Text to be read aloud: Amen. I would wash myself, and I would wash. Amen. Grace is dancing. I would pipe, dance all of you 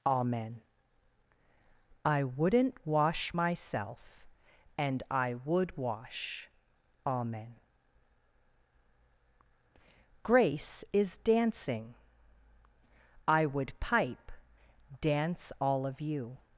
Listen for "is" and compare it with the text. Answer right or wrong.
right